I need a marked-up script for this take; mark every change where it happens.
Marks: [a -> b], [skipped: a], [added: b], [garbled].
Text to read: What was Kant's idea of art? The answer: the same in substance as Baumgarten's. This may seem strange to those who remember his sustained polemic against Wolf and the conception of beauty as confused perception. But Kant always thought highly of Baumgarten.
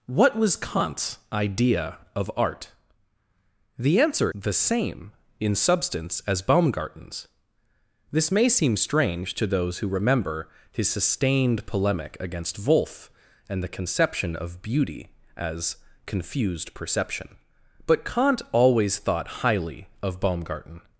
What was Kant's idea of art? The answer: the same in substance as Baumgarten's. This may seem strange to those who remember his sustained polemic against Wolf and the conception of beauty as confused perception. But Kant always thought highly of Baumgarten.